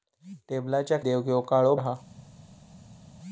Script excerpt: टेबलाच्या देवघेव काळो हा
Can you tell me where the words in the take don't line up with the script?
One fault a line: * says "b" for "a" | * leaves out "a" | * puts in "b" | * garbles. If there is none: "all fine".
all fine